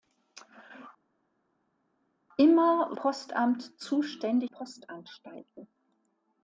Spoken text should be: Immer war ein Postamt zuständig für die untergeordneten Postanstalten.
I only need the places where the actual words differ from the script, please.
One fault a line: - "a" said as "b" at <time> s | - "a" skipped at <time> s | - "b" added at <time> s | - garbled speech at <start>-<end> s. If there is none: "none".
- "war ein" skipped at 3.0 s
- "für die untergeordneten" skipped at 4.5 s